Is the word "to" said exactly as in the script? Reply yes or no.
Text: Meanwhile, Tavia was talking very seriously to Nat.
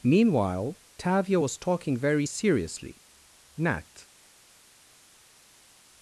no